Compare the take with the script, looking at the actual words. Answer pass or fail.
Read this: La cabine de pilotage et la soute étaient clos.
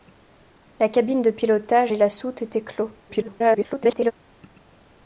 fail